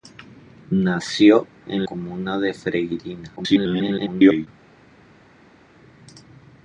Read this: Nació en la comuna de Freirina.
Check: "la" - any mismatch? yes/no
yes